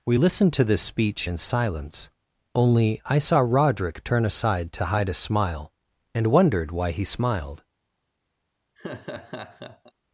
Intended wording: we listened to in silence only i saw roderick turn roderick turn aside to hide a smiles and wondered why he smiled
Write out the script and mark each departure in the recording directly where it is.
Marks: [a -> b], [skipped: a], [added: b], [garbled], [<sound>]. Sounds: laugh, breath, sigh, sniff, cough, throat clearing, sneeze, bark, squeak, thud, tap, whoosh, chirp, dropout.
we listened to [added: this speech] in silence only i saw roderick turn [skipped: roderick turn] aside to hide a [smiles -> smile] and wondered why he smiled [laugh]